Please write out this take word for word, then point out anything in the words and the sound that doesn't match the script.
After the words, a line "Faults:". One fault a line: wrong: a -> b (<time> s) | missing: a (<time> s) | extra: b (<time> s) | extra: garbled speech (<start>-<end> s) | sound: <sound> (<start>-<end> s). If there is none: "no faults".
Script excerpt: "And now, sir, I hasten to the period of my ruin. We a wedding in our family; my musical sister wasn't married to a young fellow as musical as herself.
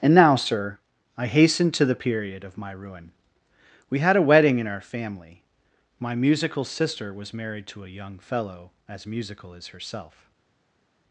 "And now, sir, I hasten to the period of my ruin. We had a wedding in our family; my musical sister was married to a young fellow as musical as herself.
Faults:
extra: had (4.0 s)
wrong: wasn't -> was (7.1 s)